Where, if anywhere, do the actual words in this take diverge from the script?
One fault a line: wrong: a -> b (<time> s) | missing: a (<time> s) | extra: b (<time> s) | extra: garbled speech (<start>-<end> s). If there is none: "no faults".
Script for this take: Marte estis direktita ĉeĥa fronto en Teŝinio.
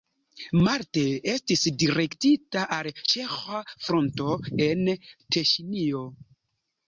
extra: al (2.8 s)